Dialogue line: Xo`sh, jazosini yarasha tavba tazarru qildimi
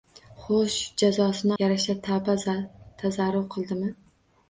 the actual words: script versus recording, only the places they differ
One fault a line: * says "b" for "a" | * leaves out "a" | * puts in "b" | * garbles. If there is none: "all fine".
all fine